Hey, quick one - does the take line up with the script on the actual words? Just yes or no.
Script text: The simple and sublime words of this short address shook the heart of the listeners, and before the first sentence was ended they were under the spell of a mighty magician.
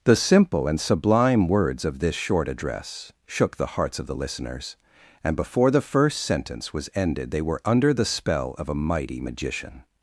no